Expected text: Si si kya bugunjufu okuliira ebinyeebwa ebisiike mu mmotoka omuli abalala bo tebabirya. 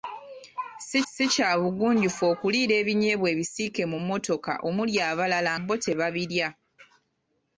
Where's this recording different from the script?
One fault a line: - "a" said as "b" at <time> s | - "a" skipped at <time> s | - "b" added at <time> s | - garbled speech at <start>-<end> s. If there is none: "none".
none